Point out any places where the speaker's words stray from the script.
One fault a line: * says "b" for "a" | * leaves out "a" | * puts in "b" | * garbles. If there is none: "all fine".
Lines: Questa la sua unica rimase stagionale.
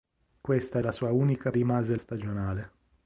all fine